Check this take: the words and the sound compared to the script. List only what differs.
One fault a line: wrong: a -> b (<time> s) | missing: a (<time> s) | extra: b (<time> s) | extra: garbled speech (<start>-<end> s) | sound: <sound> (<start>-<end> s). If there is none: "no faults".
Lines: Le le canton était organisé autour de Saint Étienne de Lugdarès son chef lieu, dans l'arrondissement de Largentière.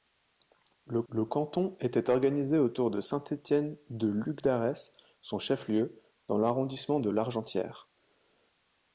no faults